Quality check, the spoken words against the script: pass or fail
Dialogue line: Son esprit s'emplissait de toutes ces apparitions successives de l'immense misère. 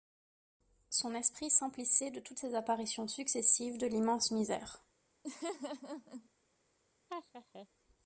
pass